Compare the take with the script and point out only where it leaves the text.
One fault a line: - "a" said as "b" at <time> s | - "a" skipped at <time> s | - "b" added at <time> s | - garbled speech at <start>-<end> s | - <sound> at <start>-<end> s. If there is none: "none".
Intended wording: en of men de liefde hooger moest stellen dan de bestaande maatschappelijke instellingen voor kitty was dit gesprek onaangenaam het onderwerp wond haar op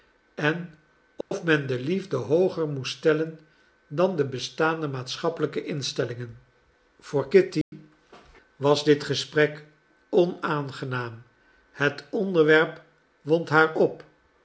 - dropout at 1.2-1.3 s
- dropout at 7.6-7.7 s